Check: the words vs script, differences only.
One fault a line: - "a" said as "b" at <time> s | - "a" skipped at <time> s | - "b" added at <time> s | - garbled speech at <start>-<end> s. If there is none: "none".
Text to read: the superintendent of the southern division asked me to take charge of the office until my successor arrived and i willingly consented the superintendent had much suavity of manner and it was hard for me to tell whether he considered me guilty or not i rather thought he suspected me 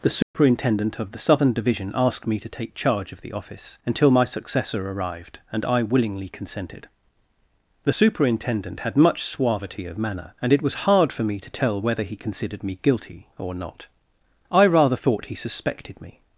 none